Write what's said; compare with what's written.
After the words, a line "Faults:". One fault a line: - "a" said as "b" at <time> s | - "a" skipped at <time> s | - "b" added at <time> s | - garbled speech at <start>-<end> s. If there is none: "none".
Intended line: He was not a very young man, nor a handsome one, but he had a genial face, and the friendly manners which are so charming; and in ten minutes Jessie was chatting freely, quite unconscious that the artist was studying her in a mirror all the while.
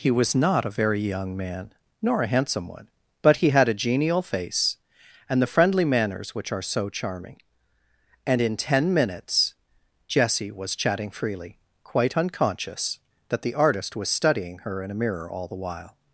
He was not a very young man, nor a handsome one, but he had a genial face, and the friendly manners which are so charming; and in ten minutes Jessie was chatting freely, quite unconscious that the artist was studying her in a mirror all the while.
Faults:
none